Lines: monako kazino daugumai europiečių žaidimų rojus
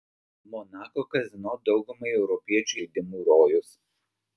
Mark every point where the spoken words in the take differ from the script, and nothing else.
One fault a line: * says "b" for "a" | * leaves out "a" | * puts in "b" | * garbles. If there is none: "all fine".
all fine